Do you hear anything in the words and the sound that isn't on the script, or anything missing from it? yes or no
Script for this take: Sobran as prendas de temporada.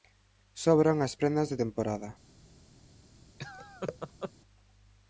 yes